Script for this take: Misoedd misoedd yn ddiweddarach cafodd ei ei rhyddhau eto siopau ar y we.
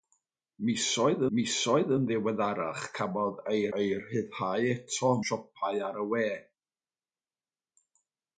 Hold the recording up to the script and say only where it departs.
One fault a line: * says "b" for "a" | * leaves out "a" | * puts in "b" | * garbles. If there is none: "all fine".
all fine